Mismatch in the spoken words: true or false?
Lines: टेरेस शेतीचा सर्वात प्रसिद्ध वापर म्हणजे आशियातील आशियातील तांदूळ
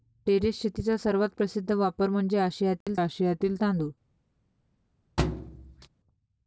false